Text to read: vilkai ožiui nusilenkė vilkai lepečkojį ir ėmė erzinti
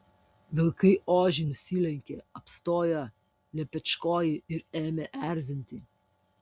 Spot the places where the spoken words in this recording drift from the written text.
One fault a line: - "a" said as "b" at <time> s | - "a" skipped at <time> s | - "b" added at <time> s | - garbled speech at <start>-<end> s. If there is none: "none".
- "vilkai" said as "apstojo" at 2.4 s